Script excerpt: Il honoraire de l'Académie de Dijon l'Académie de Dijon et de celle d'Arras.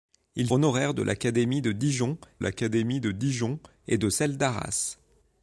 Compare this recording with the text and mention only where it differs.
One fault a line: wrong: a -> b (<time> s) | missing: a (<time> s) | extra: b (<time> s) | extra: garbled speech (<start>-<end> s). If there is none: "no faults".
no faults